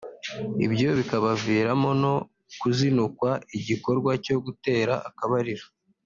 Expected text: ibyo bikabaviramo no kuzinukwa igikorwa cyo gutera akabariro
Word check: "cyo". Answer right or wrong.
right